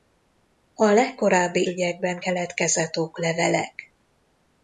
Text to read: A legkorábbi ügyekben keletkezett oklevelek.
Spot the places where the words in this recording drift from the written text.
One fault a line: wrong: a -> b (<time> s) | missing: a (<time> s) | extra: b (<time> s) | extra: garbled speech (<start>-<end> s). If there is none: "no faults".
no faults